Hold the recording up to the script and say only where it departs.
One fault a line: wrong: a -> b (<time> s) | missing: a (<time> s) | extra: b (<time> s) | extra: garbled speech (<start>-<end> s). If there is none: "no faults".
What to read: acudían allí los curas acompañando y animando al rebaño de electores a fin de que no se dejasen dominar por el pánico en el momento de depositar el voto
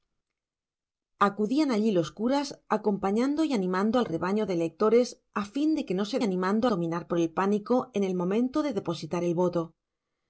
wrong: dejasen -> animando (6.2 s)